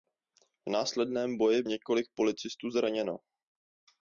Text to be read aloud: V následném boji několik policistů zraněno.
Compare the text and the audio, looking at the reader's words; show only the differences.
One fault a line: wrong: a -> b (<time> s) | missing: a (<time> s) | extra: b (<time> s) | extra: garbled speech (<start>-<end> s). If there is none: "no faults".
no faults